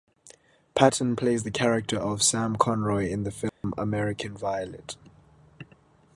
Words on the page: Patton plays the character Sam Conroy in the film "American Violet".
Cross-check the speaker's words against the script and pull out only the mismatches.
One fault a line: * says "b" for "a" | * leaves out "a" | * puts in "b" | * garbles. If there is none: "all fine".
* puts in "of"